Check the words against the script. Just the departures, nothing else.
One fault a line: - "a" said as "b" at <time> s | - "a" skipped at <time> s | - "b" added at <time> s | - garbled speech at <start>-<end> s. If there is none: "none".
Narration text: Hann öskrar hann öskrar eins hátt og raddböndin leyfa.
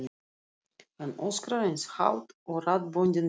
- "hann öskrar" skipped at 1.6 s